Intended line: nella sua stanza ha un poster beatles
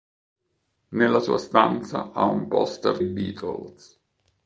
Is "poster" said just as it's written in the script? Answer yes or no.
yes